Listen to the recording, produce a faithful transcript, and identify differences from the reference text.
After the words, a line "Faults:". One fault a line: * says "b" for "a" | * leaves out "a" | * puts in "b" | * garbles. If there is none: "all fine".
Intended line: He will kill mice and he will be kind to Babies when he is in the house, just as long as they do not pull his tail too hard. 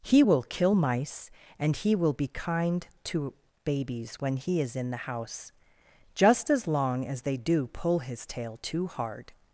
He will kill mice and he will be kind to Babies when he is in the house, just as long as they do pull his tail too hard.
Faults:
* leaves out "not"